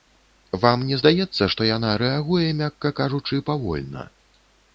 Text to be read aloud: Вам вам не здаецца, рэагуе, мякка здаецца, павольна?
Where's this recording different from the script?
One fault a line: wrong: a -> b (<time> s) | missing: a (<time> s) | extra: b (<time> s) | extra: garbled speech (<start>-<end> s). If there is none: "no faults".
missing: вам (0.8 s)
extra: што яна (1.5 s)
wrong: здаецца -> кажучы (3.0 s)